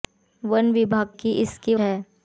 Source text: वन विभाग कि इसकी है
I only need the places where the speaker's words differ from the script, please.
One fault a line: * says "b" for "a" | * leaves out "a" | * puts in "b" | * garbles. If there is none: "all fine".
all fine